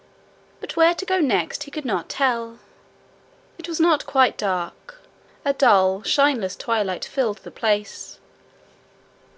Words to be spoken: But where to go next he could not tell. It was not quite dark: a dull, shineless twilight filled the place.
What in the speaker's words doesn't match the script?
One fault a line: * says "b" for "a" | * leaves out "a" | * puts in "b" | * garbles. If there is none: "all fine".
all fine